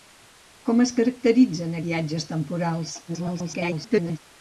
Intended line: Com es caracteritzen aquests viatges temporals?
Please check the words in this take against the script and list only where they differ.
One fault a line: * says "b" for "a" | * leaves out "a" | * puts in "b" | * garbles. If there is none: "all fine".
* leaves out "aquests"
* garbles